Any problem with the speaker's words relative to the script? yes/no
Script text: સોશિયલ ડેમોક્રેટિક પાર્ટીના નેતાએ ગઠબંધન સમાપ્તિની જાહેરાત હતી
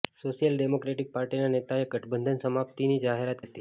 no